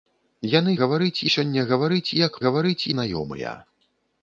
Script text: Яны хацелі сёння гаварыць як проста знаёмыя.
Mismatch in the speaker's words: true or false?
true